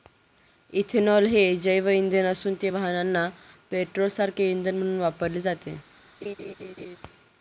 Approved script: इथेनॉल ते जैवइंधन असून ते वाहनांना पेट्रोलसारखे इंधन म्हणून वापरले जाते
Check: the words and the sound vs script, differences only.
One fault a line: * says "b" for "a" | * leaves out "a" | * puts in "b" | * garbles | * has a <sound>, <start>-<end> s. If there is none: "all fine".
* says "हे" for "ते"
* has a laugh, 6.2-7.0 s